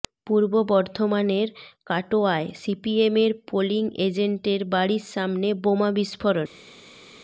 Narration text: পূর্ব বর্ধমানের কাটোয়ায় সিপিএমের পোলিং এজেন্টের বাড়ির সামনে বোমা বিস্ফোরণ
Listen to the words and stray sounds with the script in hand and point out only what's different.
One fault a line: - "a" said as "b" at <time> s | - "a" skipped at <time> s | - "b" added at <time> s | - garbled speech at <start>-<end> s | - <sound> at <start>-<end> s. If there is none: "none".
none